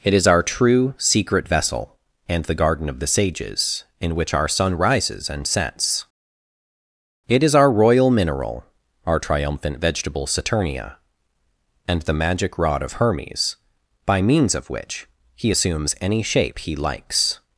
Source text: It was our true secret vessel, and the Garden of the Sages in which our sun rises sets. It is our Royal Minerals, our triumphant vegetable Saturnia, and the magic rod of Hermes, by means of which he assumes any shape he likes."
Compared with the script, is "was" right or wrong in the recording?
wrong